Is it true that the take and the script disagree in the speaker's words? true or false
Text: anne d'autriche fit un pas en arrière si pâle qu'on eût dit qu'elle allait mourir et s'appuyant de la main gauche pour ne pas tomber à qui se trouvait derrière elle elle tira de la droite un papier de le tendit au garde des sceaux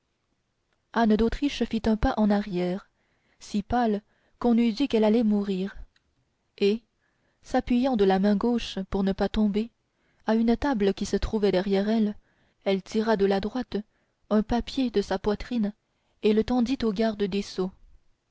true